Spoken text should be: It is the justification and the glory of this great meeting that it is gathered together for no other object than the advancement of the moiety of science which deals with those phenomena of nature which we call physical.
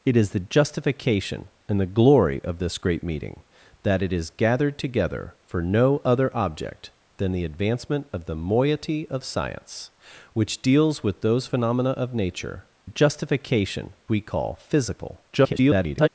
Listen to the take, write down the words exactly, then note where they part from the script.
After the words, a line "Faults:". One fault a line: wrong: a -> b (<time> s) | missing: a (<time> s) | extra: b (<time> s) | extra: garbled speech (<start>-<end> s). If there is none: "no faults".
It is the justification and the glory of this great meeting that it is gathered together for no other object than the advancement of the moiety of science which deals with those phenomena of nature justification we call physical. [garbled]
Faults:
wrong: which -> justification (12.8 s)
extra: garbled speech (15.3-16.1 s)